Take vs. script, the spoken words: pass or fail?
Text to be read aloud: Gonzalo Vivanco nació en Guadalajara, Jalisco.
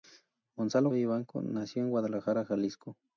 pass